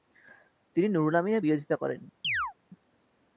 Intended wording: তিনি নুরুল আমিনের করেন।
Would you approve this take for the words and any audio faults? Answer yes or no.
no